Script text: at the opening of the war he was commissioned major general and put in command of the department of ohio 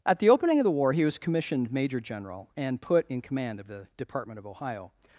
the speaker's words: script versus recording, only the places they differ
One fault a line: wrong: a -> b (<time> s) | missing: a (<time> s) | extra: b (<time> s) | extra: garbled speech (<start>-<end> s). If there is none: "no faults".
no faults